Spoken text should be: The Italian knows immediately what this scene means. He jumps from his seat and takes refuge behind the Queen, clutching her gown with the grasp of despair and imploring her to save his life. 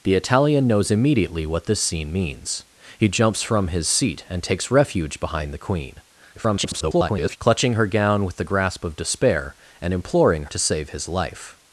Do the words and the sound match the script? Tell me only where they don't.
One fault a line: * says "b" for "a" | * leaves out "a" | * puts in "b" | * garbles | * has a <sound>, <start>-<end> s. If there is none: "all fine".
* garbles
* leaves out "her"